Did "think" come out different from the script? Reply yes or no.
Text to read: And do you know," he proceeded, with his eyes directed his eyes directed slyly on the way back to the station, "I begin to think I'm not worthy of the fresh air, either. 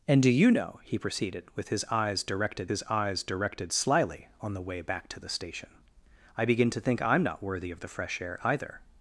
no